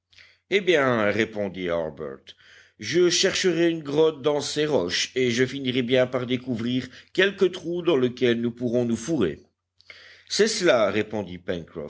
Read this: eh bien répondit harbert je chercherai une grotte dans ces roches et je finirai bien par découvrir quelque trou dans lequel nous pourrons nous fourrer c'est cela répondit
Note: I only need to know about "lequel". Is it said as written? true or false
true